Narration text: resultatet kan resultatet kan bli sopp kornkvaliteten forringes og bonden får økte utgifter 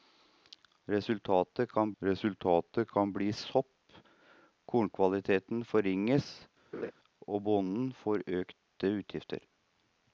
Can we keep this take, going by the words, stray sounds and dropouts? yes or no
no